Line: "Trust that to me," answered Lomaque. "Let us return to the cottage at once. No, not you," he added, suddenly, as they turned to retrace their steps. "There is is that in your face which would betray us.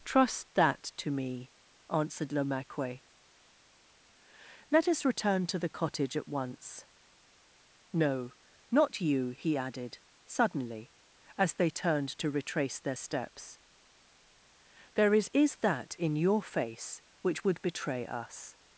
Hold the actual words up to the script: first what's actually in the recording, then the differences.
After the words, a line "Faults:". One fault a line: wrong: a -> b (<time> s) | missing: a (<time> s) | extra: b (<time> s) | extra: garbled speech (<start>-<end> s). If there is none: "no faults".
"Trust that to me," answered Lomaque. "Let us return to the cottage at once. No, not you," he added, suddenly, as they turned to retrace their steps. "There is is that in your face which would betray us.
Faults:
no faults